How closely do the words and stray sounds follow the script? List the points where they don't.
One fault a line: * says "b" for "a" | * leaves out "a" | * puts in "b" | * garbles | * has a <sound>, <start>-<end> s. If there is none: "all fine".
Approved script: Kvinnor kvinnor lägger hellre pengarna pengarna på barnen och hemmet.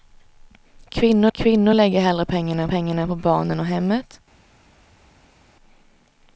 all fine